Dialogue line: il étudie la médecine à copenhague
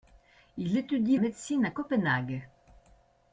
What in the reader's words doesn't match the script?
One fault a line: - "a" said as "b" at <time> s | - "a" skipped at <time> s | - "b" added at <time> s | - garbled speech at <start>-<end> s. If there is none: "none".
- "la" skipped at 1.2 s